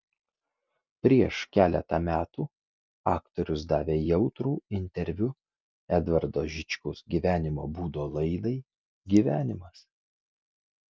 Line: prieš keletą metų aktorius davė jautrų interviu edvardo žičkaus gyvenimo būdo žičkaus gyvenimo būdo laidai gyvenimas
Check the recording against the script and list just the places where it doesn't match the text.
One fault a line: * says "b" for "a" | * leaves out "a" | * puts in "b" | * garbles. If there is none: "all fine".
* leaves out "žičkaus gyvenimo būdo"